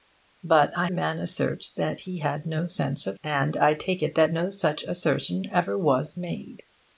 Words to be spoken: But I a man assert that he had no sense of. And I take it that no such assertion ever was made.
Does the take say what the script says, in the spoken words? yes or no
yes